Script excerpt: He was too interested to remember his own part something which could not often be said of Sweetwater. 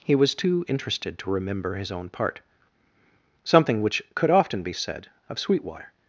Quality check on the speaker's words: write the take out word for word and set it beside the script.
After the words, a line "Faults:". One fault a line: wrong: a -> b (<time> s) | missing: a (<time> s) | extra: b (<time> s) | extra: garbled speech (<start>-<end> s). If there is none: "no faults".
He was too interested to remember his own part something which could often be said of Sweetwater.
Faults:
missing: not (4.3 s)